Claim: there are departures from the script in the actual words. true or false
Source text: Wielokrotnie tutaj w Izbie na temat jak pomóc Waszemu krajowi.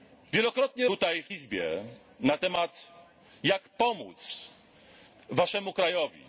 false